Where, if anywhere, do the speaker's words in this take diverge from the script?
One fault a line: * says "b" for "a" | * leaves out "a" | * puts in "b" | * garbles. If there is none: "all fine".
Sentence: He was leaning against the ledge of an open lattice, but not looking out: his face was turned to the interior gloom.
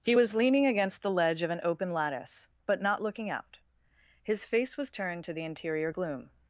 all fine